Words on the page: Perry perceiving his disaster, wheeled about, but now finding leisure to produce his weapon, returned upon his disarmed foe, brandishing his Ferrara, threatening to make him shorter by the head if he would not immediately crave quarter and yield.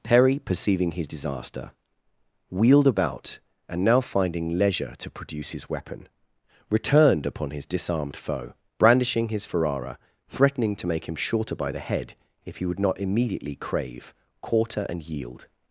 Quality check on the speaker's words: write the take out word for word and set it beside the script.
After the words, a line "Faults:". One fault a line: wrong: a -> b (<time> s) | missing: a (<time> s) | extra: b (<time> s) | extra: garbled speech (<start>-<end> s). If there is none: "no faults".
Perry perceiving his disaster, wheeled about, and now finding leisure to produce his weapon, returned upon his disarmed foe, brandishing his Ferrara, threatening to make him shorter by the head if he would not immediately crave quarter and yield.
Faults:
wrong: but -> and (3.7 s)